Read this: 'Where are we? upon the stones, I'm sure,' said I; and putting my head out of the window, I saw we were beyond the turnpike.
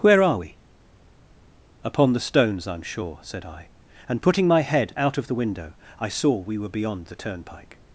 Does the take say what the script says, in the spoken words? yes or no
yes